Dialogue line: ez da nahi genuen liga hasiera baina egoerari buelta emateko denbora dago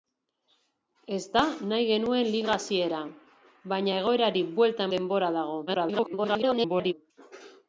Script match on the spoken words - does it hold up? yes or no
no